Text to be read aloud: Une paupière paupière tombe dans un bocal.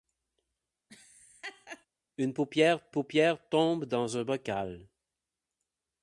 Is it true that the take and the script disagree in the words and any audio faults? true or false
true